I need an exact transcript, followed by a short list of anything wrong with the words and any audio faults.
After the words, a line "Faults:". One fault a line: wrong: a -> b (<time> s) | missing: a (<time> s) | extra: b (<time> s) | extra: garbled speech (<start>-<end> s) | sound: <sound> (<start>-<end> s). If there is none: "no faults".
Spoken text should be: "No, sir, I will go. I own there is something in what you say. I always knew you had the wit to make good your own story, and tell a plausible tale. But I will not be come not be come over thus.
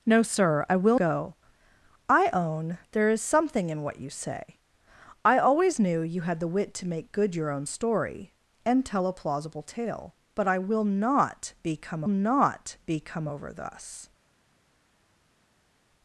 "No, sir, I will go. I own there is something in what you say. I always knew you had the wit to make good your own story, and tell a plausible tale. But I will not be come not be come over thus.
Faults:
no faults